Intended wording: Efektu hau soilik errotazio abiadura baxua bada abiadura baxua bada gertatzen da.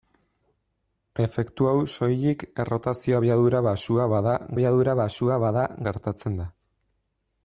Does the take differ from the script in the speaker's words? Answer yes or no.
no